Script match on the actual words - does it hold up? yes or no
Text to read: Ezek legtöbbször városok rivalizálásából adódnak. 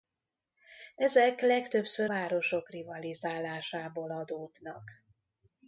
yes